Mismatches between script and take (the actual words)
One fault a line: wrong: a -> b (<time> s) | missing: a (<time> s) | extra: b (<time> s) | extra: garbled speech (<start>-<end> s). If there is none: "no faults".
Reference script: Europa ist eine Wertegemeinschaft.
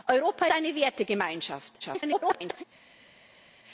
missing: ist (0.5 s)
extra: garbled speech (1.8-2.6 s)